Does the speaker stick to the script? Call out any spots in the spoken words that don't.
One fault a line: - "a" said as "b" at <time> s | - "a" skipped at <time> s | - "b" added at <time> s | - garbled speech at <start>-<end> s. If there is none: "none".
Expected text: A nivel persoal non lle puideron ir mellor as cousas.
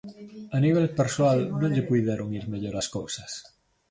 none